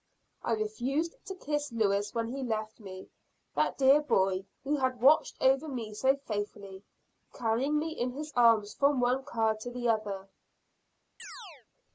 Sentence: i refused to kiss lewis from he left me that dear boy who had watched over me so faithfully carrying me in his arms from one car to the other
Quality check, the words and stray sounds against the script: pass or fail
fail